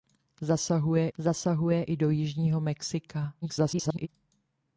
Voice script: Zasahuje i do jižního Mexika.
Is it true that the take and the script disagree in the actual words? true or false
true